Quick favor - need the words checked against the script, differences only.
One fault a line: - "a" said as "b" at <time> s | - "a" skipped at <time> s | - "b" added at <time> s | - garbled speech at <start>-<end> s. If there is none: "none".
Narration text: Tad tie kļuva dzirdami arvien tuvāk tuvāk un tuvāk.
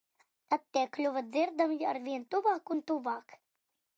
- "tuvāk" skipped at 2.8 s